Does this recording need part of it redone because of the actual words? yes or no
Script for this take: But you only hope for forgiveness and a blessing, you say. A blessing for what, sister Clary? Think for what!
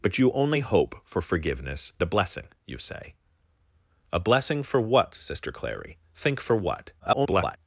yes